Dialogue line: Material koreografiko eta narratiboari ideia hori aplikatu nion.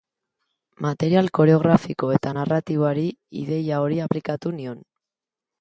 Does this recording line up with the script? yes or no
yes